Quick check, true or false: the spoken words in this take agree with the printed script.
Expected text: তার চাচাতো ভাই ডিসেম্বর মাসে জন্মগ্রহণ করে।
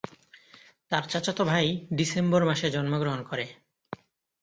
true